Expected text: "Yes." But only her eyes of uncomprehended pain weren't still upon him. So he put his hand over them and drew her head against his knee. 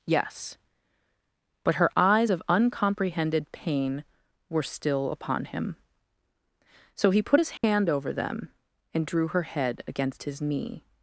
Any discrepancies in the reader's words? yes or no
yes